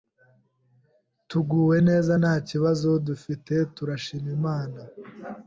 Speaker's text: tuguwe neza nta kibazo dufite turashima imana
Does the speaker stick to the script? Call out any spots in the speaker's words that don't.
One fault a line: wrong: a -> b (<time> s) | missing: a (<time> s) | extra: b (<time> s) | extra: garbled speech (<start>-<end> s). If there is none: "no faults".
no faults